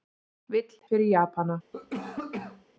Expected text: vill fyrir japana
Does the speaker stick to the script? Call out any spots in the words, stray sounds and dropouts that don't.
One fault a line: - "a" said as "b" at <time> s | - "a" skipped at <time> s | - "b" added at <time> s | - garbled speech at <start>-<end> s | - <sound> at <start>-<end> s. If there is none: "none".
- cough at 1.7-2.6 s